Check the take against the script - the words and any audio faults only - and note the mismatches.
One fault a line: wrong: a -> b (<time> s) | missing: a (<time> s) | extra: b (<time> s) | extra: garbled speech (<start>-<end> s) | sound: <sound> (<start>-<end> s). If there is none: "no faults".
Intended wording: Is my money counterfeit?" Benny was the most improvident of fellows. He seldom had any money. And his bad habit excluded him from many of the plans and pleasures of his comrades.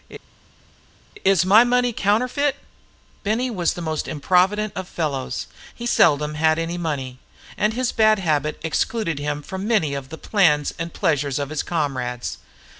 no faults